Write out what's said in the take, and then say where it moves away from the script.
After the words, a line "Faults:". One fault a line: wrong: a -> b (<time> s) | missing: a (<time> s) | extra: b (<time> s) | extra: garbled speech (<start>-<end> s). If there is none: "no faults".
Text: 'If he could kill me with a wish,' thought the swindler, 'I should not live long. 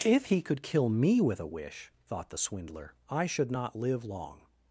'If he could kill me with a wish,' thought the swindler, 'I should not live long.
Faults:
no faults